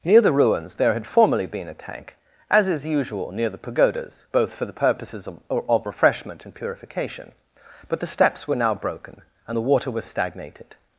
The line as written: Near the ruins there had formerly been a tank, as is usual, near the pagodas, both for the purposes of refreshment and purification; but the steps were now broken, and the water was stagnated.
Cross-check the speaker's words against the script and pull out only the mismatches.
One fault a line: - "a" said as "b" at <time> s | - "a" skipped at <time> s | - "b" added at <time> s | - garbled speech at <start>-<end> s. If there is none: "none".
- "of" added at 5.5 s